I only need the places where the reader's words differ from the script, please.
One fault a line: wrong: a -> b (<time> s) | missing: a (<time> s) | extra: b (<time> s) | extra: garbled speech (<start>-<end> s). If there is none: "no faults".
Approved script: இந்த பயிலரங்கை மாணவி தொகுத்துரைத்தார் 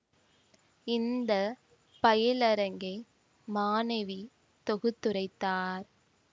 no faults